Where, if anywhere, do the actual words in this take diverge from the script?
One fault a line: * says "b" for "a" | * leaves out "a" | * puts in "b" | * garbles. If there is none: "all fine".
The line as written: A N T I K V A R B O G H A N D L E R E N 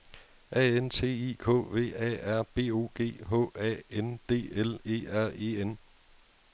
all fine